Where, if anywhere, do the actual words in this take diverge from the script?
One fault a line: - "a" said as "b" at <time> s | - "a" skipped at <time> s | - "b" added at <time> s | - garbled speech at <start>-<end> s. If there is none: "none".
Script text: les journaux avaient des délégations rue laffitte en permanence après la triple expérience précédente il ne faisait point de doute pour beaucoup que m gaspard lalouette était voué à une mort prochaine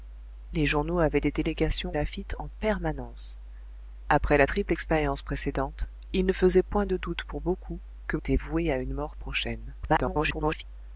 - "rue" skipped at 1.9 s
- "m gaspard lalouette" skipped at 8.2 s
- garbled speech at 9.8-10.6 s